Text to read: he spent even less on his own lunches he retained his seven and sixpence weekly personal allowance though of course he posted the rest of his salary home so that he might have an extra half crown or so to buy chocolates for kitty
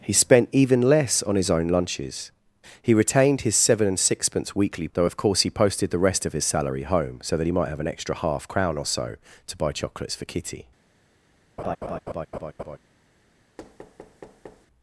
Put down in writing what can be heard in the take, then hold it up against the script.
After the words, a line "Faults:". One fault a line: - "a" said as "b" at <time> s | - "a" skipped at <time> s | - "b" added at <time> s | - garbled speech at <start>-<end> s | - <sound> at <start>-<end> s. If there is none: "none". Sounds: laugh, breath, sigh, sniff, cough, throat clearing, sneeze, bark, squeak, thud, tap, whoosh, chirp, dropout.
he spent even less on his own lunches he retained his seven and sixpence weekly though of course he posted the rest of his salary home so that he might have an extra half crown or so to buy chocolates for kitty
Faults:
- "personal allowance" skipped at 4.9 s
- laugh at 11.6-12.8 s
- thud at 13.6-14.7 s